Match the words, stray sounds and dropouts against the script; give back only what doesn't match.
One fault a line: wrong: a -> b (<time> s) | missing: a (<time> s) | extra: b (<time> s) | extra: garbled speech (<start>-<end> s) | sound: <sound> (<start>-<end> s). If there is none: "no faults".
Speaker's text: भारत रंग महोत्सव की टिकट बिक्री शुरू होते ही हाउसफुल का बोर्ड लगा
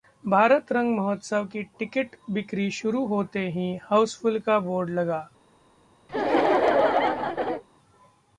sound: laugh (6.1-7.6 s)